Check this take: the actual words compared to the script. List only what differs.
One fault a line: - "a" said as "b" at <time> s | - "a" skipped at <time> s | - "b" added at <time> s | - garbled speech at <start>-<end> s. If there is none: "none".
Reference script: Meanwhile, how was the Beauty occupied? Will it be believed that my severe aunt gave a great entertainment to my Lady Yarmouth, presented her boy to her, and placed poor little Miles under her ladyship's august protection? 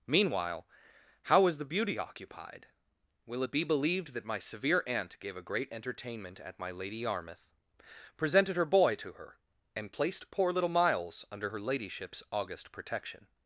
- "to" said as "at" at 6.4 s